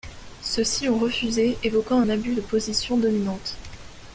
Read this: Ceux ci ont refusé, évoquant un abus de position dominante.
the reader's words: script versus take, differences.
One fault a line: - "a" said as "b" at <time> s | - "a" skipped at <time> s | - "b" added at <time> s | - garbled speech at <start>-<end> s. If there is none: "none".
none